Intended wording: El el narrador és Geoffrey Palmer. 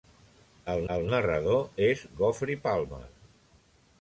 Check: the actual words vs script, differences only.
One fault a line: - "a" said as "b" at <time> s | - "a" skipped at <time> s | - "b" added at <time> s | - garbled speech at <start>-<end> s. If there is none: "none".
none